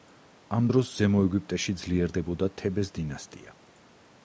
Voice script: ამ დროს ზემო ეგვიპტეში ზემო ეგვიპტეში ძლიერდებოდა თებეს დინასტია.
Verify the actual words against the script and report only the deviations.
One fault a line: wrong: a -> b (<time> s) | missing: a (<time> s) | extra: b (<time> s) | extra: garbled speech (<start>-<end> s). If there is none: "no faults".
missing: ზემო ეგვიპტეში (1.7 s)